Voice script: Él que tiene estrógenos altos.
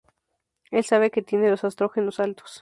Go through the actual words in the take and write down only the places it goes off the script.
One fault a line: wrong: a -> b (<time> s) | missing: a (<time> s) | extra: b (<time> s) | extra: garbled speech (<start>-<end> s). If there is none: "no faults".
extra: sabe (0.8 s)
extra: los (1.5 s)